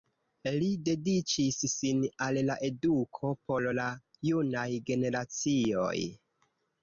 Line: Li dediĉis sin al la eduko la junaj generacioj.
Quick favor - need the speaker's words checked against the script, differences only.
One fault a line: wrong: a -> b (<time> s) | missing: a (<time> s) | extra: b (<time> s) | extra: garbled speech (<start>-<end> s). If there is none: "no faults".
extra: por (3.5 s)